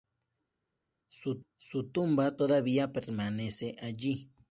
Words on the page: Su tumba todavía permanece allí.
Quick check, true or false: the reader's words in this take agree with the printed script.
true